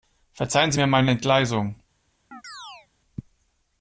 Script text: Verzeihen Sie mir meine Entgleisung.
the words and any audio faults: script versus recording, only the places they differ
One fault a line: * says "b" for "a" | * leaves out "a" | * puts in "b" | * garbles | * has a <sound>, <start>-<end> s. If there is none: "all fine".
* has a chirp, 2.3-2.9 s